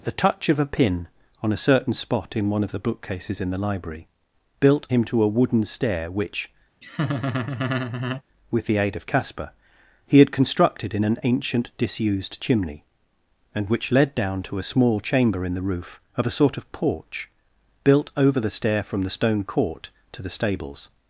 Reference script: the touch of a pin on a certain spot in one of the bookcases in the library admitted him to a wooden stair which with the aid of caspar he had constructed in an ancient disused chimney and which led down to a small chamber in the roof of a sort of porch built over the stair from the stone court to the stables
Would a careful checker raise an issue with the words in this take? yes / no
yes